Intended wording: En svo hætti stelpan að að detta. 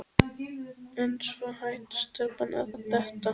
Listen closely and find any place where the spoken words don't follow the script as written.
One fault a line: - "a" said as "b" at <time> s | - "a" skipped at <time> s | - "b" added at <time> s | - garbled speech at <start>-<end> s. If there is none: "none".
none